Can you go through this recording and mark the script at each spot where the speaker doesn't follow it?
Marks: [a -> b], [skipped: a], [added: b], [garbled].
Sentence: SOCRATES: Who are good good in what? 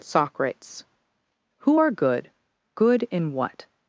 SOCRATES: Who are good good in what?